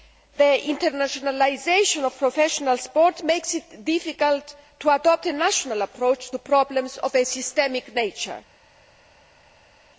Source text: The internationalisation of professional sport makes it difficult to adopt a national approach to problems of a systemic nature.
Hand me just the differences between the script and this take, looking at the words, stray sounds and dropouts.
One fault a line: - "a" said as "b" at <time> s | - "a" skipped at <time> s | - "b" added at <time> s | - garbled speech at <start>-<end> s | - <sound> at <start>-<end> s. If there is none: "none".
none